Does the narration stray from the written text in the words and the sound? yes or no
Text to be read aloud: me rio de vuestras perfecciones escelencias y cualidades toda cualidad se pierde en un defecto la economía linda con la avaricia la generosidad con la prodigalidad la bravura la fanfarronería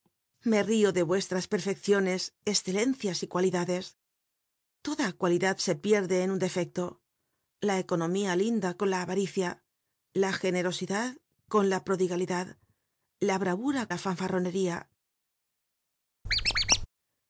yes